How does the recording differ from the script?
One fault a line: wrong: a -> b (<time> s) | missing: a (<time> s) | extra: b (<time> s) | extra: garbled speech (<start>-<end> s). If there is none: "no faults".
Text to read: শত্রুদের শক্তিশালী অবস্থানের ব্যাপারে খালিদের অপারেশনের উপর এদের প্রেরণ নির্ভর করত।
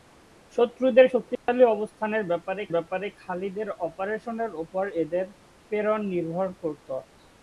extra: ব্যাপারে (2.7 s)